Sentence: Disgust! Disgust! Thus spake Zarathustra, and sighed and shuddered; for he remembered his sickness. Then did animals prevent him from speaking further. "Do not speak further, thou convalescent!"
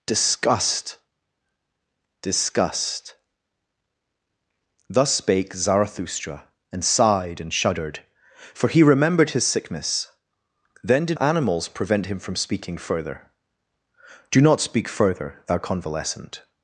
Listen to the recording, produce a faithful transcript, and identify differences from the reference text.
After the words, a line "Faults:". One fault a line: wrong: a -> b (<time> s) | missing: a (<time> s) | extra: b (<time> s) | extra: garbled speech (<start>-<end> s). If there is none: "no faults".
Disgust! Disgust! Thus spake Zarathustra, and sighed and shuddered; for he remembered his sickness. Then did animals prevent him from speaking further. "Do not speak further, thou convalescent!"
Faults:
no faults